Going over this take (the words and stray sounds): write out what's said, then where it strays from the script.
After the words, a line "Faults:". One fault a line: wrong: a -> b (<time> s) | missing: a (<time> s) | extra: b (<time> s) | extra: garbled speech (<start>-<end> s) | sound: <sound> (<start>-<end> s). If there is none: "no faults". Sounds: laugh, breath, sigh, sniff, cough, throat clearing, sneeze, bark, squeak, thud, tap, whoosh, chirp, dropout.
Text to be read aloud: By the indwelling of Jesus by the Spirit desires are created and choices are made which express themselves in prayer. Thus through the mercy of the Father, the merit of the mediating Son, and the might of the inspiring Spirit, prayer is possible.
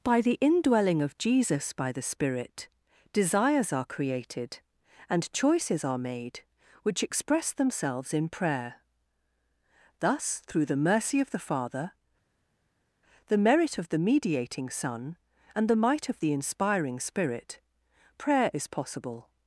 By the indwelling of Jesus by the Spirit desires are created and choices are made which express themselves in prayer. Thus through the mercy of the Father, the merit of the mediating Son, and the might of the inspiring Spirit, prayer is possible.
Faults:
no faults